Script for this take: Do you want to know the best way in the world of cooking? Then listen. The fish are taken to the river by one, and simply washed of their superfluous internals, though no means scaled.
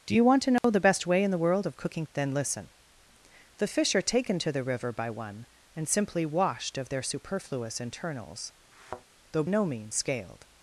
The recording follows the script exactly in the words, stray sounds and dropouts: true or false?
false